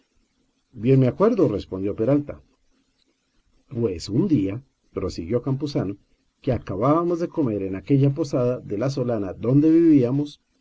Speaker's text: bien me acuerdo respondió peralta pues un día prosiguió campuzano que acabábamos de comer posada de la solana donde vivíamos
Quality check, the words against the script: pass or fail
fail